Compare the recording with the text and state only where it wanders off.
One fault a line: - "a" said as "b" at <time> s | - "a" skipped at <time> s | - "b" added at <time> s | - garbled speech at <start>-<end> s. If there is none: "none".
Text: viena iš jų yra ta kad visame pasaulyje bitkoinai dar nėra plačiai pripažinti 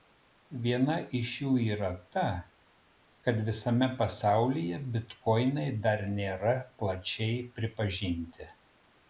none